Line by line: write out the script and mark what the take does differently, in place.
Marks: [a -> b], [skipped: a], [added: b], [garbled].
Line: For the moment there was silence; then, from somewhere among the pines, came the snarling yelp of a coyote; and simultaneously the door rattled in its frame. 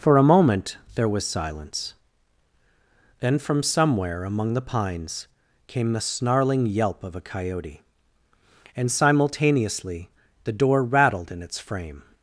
For [the -> a] moment there was silence; then, from somewhere among the pines, came the snarling yelp of a coyote; and simultaneously the door rattled in its frame.